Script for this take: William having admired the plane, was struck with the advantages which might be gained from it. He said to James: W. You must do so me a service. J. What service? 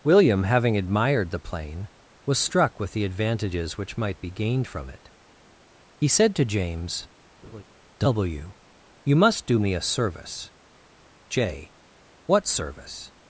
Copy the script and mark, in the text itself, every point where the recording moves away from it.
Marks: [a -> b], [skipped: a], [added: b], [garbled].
William having admired the plane, was struck with the advantages which might be gained from it. He said to James: W. You must do [skipped: so] me a service. J. What service?